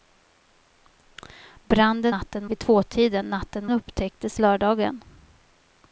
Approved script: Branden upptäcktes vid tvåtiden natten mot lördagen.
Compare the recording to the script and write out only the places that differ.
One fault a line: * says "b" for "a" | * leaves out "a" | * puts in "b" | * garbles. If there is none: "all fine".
* says "natten" for "upptäcktes"
* says "upptäcktes" for "mot"